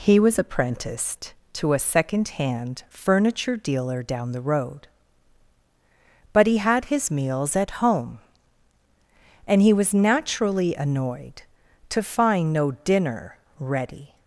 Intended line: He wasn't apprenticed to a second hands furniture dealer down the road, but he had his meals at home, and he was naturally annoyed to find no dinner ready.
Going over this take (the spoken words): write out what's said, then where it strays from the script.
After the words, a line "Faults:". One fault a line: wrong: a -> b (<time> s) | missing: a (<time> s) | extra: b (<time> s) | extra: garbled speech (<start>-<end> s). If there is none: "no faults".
He was apprenticed to a second hand furniture dealer down the road, but he had his meals at home, and he was naturally annoyed to find no dinner ready.
Faults:
wrong: wasn't -> was (0.2 s)
wrong: hands -> hand (2.3 s)